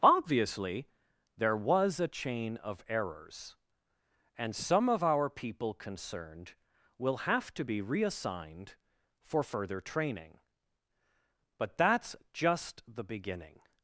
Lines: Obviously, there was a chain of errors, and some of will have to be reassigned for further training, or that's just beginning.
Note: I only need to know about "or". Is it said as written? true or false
false